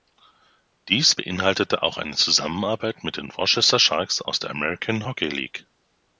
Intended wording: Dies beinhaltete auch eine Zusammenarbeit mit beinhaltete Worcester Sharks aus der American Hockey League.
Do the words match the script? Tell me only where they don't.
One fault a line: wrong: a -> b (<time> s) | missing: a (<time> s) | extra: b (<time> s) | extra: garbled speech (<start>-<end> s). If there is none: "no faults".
wrong: beinhaltete -> den (3.2 s)